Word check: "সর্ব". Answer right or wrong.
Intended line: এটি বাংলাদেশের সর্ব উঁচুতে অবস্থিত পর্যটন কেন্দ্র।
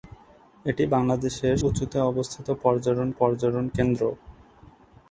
wrong